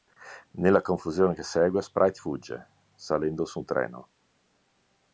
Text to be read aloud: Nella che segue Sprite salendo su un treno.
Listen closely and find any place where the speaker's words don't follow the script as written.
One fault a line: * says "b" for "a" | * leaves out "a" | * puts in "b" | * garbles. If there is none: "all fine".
* puts in "confusione"
* puts in "fugge"